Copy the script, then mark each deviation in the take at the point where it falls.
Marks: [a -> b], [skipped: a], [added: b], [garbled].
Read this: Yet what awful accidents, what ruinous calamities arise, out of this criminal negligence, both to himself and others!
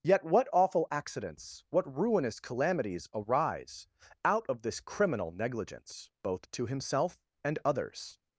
Yet what awful accidents, what ruinous calamities arise, out of this criminal negligence, both to himself and others!